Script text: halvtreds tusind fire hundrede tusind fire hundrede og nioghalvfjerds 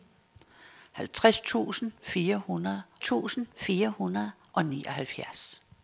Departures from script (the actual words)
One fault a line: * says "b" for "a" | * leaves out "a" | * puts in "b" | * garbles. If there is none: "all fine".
all fine